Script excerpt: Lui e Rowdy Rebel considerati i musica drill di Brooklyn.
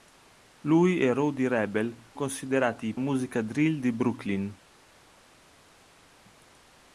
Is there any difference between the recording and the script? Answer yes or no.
no